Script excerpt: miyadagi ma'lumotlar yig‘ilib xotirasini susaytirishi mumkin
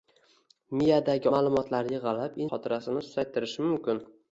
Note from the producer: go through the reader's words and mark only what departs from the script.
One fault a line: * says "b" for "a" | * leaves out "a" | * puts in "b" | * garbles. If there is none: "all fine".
all fine